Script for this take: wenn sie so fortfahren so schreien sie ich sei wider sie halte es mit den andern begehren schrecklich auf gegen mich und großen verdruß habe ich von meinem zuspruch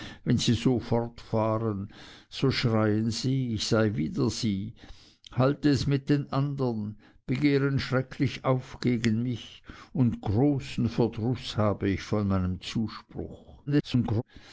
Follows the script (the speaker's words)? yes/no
no